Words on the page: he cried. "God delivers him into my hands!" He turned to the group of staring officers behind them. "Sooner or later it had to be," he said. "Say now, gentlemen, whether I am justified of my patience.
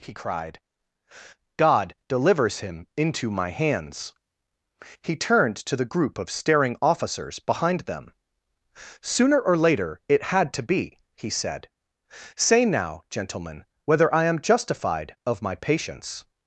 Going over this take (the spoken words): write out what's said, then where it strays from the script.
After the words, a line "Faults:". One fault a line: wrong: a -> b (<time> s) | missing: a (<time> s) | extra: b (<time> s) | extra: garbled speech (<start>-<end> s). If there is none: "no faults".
he cried. "God delivers him into my hands!" He turned to the group of staring officers behind them. "Sooner or later it had to be," he said. "Say now, gentlemen, whether I am justified of my patience.
Faults:
no faults